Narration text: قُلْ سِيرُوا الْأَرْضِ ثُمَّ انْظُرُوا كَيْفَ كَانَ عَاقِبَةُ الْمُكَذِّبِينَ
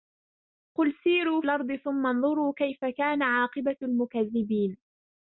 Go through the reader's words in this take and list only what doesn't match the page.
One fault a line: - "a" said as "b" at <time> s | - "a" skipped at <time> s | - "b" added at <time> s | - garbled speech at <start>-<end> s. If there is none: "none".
none